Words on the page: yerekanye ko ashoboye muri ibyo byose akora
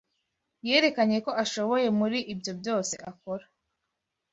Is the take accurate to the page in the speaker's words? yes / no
yes